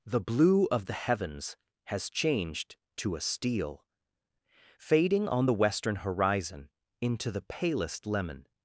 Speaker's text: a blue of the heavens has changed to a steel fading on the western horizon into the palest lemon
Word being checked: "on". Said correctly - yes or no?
yes